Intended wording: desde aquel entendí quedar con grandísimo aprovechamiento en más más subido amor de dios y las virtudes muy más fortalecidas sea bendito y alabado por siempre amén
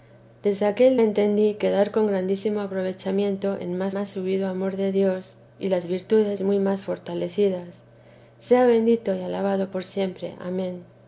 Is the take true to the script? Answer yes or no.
yes